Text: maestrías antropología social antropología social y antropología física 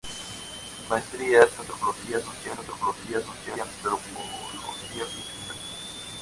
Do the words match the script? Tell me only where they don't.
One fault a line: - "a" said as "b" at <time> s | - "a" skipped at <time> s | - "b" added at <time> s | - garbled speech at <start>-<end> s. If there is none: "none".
none